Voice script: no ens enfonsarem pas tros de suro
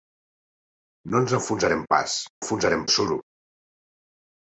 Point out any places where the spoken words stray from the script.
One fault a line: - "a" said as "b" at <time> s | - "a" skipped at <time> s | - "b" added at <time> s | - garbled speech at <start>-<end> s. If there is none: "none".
- "tros" said as "enfonsarem" at 2.4 s